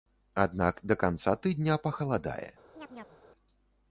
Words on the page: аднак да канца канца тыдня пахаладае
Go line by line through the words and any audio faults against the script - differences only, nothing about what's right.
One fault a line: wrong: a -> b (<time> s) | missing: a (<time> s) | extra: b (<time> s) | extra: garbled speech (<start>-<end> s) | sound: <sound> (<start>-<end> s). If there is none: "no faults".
missing: канца (1.4 s)
sound: chirp (2.8-3.2 s)